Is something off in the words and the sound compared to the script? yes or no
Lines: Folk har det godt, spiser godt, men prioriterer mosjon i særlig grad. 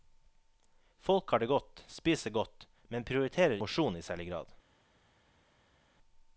no